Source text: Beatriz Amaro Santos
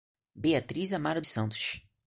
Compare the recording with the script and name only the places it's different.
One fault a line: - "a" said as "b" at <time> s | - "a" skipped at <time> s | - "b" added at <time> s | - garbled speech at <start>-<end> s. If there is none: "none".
none